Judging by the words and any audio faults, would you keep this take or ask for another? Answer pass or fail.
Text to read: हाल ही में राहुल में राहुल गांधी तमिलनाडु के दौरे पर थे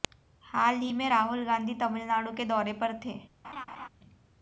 fail